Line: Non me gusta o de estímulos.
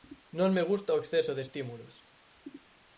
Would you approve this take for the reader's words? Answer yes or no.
no